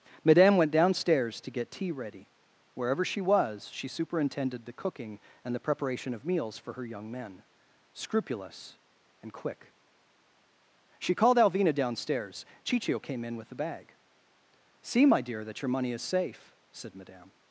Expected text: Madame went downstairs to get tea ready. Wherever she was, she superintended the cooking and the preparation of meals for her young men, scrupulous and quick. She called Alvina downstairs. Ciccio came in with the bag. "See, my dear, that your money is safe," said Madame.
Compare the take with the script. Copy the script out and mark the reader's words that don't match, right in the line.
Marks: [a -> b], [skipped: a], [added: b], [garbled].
Madame went downstairs to get tea ready. Wherever she was, she superintended the cooking and the preparation of meals for her young men, scrupulous and quick. She called Alvina downstairs. Ciccio came in with the bag. "See, my dear, that your money is safe," said Madame.